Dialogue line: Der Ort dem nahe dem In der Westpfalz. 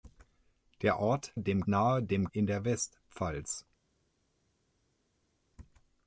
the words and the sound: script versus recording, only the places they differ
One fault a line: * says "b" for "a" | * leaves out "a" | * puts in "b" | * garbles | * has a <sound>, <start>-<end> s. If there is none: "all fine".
all fine